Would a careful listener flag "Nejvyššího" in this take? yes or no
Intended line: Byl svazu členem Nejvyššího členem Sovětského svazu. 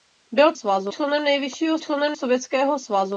no